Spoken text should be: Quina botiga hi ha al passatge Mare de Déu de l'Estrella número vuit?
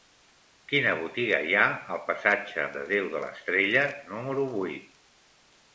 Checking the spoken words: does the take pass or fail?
fail